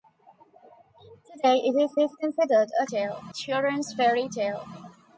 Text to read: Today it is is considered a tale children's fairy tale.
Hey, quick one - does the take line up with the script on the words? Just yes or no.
yes